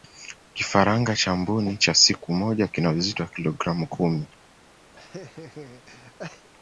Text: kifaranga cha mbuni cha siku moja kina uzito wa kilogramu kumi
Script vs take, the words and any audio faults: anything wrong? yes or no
yes